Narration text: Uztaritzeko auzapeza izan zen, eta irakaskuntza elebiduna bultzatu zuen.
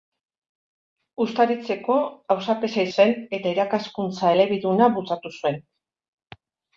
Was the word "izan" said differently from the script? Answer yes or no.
yes